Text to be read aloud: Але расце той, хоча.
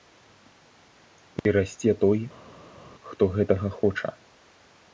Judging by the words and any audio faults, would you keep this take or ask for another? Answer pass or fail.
fail